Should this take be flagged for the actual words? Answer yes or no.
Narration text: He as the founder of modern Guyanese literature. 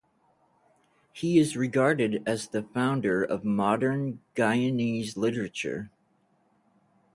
yes